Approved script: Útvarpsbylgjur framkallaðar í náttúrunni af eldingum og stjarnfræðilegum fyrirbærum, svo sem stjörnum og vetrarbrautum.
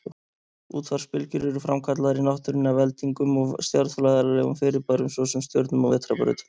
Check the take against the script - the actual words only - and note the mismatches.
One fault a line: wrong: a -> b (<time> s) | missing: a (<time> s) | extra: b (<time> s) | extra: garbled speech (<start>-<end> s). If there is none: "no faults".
extra: eru (1.5 s)